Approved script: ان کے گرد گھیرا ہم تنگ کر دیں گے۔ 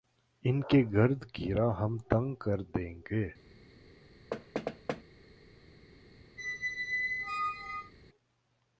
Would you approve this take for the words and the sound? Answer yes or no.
no